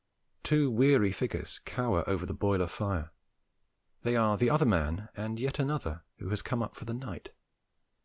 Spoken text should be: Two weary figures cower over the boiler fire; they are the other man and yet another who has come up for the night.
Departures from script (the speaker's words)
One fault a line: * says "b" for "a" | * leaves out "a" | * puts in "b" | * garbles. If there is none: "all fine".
all fine